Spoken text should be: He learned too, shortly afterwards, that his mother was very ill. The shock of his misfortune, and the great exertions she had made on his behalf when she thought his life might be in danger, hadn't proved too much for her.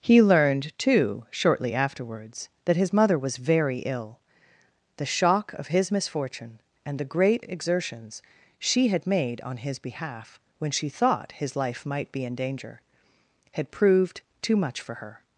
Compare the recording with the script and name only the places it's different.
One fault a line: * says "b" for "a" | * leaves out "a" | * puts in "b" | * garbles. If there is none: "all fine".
* says "had" for "hadn't"